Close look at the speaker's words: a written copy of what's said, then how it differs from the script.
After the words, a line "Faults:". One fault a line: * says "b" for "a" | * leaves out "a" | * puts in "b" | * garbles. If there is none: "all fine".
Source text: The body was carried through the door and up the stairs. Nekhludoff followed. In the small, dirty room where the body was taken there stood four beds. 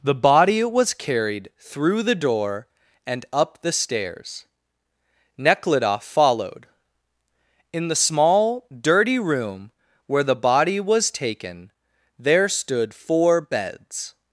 The body was carried through the door and up the stairs. Nekhludoff followed. In the small, dirty room where the body was taken there stood four beds.
Faults:
all fine